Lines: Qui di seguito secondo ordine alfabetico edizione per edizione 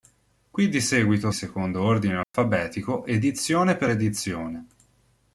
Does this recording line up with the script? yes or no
yes